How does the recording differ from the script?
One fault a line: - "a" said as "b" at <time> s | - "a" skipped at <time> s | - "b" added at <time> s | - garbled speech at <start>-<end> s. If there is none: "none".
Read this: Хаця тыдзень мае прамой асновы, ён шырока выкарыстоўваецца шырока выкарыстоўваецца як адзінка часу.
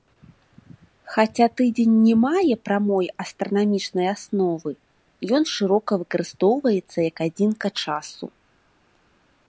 - "не" added at 2.0 s
- "астранамічнай" added at 3.2 s
- "шырока выкарыстоўваецца" skipped at 7.0 s